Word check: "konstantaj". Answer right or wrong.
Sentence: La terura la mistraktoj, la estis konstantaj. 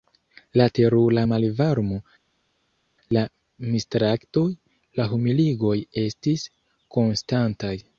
right